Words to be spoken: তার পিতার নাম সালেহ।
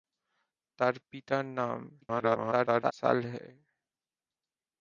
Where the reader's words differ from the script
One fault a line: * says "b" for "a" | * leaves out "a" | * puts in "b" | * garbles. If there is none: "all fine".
* garbles